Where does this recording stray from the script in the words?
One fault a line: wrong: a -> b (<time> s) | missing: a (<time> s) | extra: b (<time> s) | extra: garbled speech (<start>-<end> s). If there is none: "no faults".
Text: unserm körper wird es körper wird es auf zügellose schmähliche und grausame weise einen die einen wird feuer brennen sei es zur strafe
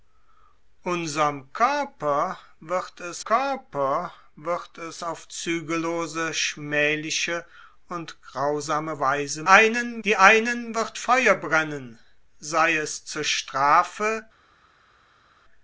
no faults